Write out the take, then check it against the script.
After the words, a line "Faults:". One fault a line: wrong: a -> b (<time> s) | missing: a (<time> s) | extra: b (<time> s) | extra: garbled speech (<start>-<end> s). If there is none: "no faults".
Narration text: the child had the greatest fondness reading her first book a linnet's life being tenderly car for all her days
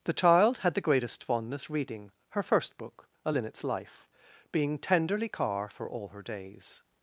the child had the greatest fondness reading her first book a linnet's life being tenderly car for all her days
Faults:
no faults